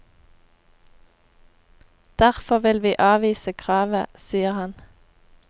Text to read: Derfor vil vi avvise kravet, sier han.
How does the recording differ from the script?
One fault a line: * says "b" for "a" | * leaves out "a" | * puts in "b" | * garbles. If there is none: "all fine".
all fine